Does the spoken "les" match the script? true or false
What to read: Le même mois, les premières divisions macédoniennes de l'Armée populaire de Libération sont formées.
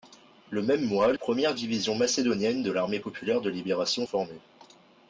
false